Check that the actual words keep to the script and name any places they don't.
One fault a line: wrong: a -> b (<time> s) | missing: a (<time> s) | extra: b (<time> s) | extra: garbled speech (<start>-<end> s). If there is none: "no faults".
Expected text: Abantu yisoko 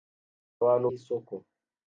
no faults